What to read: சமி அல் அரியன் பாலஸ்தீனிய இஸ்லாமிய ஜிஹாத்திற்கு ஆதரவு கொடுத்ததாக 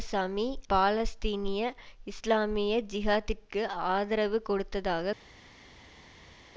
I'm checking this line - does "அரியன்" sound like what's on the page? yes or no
no